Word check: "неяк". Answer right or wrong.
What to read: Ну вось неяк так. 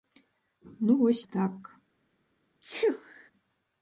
wrong